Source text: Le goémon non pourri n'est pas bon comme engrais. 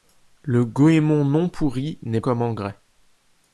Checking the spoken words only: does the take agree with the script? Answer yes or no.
no